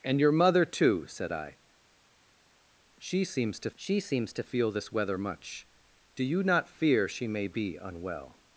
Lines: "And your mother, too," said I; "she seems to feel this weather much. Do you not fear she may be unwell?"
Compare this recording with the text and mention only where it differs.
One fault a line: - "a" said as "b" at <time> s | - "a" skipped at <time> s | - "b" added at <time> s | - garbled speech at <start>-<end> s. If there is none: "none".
- "she seems to" added at 3.8 s